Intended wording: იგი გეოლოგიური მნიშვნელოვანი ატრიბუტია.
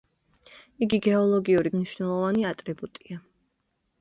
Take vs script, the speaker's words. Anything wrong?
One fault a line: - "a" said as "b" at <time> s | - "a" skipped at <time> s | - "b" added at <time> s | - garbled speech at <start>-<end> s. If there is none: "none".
none